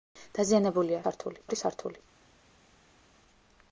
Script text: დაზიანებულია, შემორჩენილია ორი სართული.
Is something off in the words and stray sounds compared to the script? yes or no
yes